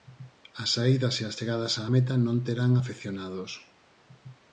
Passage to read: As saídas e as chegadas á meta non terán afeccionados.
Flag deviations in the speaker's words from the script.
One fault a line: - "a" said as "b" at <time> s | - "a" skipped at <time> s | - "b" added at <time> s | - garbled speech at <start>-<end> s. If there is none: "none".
none